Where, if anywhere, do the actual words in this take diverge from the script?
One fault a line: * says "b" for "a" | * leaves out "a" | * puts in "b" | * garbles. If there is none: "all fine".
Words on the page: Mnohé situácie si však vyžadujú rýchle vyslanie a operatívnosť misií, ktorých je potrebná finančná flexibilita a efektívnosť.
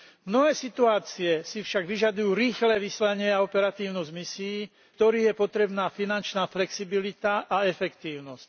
all fine